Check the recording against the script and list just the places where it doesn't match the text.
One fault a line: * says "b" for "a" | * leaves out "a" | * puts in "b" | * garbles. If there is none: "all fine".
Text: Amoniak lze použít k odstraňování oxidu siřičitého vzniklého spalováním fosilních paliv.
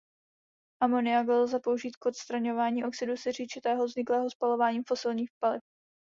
all fine